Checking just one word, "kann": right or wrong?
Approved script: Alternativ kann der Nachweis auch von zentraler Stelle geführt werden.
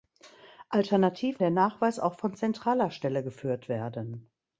wrong